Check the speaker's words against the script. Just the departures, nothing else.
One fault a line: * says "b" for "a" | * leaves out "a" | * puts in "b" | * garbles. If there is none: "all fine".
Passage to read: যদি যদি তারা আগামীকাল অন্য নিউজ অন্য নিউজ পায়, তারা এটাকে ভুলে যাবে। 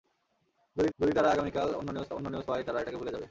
all fine